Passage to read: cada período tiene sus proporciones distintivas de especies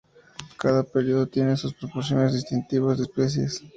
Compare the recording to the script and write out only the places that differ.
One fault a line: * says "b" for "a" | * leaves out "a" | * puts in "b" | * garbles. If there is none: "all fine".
all fine